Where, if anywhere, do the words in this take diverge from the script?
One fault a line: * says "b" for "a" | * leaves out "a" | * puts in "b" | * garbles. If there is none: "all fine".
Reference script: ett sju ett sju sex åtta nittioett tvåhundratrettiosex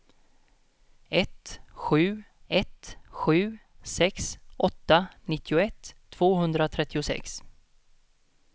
all fine